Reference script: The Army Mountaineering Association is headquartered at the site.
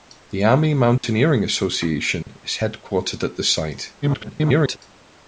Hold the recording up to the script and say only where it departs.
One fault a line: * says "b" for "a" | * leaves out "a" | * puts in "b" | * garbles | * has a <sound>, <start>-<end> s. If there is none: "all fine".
* has a dropout, 1.0-1.0 s
* has a dropout, 2.2-2.3 s
* garbles